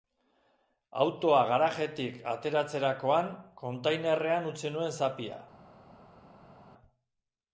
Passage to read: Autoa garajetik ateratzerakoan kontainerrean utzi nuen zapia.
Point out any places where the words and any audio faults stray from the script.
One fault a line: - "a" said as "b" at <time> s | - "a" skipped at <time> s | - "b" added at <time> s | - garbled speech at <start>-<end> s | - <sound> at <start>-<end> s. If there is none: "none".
none